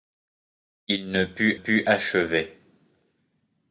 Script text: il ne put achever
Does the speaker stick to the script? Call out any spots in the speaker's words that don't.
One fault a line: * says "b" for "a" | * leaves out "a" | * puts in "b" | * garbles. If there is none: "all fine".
* puts in "put"